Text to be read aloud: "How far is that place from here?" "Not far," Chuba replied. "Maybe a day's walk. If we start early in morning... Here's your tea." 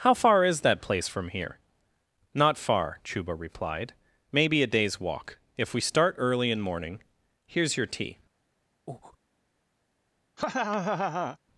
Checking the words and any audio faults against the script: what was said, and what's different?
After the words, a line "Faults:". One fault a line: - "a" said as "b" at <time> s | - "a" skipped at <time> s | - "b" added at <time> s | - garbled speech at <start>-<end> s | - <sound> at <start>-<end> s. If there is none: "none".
"How far is that place from here?" "Not far," Chuba replied. "Maybe a day's walk. If we start early in morning... Here's your tea."
Faults:
- breath at 8.9-9.2 s
- laugh at 10.4-11.4 s